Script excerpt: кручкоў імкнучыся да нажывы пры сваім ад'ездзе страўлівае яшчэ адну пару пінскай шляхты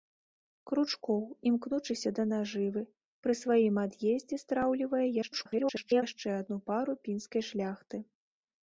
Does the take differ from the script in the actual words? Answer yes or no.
yes